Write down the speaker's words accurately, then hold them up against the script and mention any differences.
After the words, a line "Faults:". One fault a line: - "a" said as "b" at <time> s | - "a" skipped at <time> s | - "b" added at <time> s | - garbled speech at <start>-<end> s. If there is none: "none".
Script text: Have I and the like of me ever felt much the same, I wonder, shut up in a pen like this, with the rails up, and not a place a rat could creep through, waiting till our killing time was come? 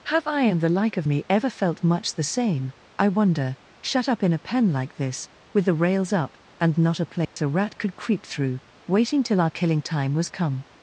Have I and the like of me ever felt much the same, I wonder, shut up in a pen like this, with the rails up, and not a place a rat could creep through, waiting till our killing time was come?
Faults:
none